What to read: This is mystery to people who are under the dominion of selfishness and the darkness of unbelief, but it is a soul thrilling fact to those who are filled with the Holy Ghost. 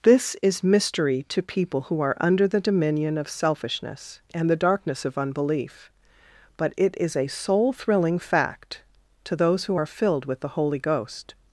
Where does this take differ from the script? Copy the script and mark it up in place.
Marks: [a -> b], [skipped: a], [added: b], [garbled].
This is mystery to people who are under the dominion of selfishness and the darkness of unbelief, but it is a soul thrilling fact to those who are filled with the Holy Ghost.